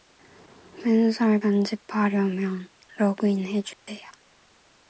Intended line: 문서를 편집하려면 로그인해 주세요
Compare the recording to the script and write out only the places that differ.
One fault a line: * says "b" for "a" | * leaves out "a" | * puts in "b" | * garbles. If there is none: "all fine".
all fine